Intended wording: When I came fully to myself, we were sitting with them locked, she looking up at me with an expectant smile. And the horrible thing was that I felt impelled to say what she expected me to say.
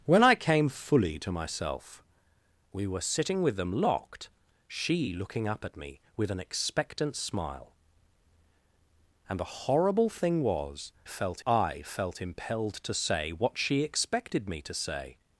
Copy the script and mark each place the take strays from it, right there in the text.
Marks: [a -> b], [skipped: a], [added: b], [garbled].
When I came fully to myself, we were sitting with them locked, she looking up at me with an expectant smile. And the horrible thing was [that -> felt] I felt impelled to say what she expected me to say.